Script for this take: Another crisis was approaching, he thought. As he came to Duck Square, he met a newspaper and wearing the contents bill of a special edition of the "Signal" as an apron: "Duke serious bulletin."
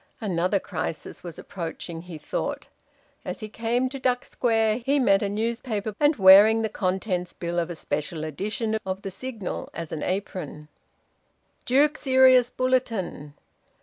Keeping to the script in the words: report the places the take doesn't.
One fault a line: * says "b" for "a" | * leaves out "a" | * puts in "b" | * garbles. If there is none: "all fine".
all fine